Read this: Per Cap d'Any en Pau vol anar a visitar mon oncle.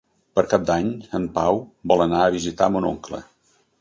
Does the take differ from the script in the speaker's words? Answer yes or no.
no